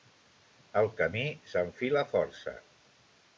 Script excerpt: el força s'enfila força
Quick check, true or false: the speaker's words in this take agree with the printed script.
false